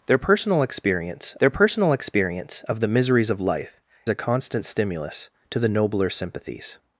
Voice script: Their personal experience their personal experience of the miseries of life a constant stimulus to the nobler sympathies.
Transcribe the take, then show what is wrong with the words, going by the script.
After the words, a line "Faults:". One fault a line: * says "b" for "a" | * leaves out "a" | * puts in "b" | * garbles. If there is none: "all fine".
Their personal experience their personal experience of the miseries of life a constant stimulus to the nobler sympathies.
Faults:
all fine